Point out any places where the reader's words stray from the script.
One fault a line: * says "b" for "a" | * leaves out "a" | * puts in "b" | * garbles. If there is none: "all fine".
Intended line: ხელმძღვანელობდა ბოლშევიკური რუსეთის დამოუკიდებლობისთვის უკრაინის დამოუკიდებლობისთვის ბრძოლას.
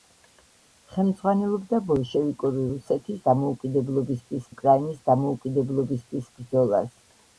all fine